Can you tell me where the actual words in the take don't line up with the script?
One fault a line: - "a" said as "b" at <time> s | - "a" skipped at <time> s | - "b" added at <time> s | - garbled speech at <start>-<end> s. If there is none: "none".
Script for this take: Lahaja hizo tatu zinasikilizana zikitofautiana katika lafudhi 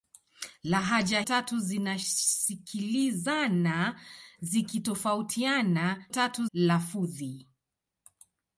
- "hizo" skipped at 1.2 s
- "katika" said as "tatu" at 6.1 s